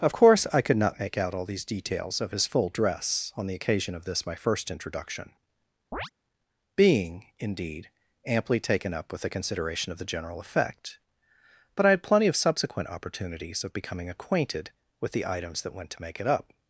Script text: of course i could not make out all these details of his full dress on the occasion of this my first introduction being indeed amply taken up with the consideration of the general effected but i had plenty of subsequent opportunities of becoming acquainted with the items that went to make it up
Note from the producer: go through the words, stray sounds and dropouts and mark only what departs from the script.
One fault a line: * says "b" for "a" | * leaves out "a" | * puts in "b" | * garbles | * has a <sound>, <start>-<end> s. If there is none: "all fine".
* has a chirp, 5.9-6.1 s
* says "effect" for "effected"